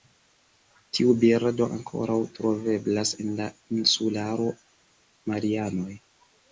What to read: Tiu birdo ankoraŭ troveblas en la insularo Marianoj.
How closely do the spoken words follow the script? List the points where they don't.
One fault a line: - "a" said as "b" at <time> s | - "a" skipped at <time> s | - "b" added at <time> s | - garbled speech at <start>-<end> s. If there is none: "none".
none